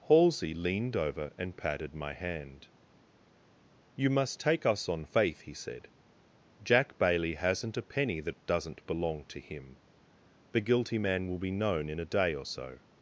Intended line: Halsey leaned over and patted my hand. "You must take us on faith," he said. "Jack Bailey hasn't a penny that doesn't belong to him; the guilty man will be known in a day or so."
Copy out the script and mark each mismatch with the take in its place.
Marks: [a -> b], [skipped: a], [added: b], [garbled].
Halsey leaned over and patted my hand. "You must take us on faith," he said. "Jack Bailey hasn't a penny that doesn't belong to him; the guilty man will be known in a day or so."